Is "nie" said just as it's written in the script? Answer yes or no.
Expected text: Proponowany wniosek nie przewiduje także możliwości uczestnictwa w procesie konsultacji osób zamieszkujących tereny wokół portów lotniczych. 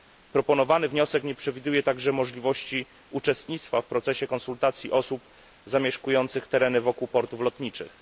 yes